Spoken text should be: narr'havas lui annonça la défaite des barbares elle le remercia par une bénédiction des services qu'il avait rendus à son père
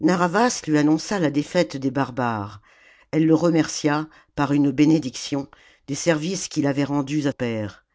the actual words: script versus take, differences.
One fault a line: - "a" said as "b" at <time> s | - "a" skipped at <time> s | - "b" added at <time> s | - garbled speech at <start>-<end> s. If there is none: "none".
- "son" skipped at 7.3 s